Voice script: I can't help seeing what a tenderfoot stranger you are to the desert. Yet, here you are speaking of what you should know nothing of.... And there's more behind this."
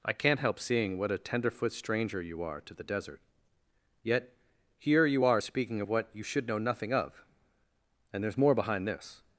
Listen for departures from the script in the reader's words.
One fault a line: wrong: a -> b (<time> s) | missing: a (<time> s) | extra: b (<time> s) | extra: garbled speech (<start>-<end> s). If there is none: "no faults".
no faults